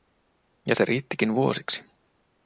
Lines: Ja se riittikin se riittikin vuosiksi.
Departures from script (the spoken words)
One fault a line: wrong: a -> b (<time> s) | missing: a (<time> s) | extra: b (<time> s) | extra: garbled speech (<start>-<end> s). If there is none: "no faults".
missing: se riittikin (1.3 s)